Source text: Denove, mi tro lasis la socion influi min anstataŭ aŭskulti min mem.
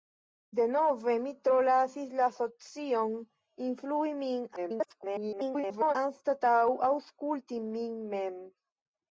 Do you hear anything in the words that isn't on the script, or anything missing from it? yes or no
yes